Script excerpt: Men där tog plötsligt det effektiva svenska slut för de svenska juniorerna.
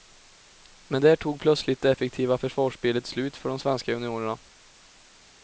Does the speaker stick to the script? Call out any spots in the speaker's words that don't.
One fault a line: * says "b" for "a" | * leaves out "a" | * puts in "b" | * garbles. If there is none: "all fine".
* says "försvarsspelet" for "svenska"